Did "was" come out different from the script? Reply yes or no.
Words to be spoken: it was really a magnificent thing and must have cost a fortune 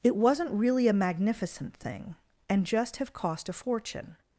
yes